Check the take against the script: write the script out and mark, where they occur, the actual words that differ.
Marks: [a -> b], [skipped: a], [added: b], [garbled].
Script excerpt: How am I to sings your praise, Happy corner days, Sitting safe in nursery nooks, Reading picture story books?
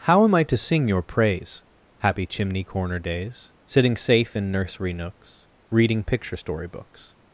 How am I to [sings -> sing] your praise, Happy [added: chimney] corner days, Sitting safe in nursery nooks, Reading picture story books?